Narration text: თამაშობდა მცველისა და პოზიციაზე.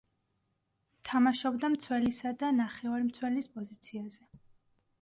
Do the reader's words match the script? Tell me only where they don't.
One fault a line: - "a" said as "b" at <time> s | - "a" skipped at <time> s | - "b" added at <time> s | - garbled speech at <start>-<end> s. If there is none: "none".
- "ნახევარმცველის" added at 2.6 s